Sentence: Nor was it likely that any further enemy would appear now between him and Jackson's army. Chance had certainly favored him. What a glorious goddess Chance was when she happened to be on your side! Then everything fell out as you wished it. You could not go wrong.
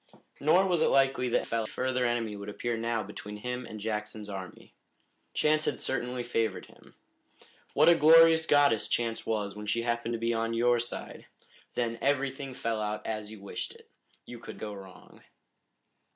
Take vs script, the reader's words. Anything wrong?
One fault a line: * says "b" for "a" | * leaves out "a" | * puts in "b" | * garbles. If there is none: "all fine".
* says "fell" for "any"
* leaves out "not"